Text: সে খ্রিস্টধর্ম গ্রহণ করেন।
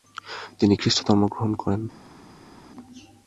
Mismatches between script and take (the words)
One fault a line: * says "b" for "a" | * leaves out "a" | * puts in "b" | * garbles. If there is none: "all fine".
* says "তিনি" for "সে"